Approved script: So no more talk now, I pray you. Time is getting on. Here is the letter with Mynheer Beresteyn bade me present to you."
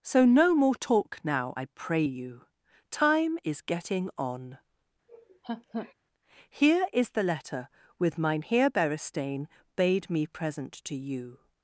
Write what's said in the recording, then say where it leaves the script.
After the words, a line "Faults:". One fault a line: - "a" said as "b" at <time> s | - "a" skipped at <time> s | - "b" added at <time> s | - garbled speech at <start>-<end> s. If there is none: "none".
So no more talk now, I pray you. Time is getting on. Here is the letter with Mynheer Beresteyn bade me present to you."
Faults:
none